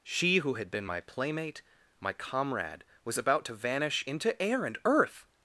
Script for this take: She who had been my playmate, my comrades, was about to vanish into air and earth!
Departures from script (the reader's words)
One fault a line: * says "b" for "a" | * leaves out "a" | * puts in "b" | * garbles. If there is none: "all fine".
* says "comrade" for "comrades"